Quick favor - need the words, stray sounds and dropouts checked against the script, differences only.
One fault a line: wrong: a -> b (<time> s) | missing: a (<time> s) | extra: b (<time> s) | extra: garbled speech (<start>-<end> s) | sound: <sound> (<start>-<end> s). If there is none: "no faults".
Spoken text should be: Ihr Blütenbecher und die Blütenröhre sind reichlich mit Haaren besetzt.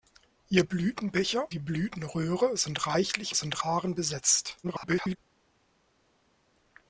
missing: und (1.5 s)
wrong: mit -> sind (3.3 s)
extra: garbled speech (4.6-5.2 s)